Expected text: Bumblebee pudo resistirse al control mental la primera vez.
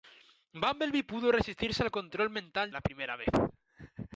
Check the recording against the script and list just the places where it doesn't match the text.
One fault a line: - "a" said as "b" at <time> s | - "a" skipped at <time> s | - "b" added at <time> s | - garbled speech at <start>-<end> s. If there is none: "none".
none